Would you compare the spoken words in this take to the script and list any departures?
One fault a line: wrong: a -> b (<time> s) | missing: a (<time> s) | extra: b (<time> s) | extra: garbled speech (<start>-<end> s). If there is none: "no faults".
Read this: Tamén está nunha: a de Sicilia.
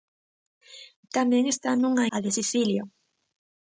no faults